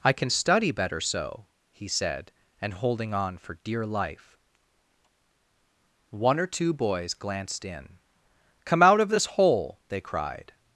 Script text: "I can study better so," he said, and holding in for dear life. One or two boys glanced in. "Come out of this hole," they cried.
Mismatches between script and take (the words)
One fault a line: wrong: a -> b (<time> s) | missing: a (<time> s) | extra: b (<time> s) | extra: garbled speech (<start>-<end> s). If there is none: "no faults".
wrong: in -> on (3.1 s)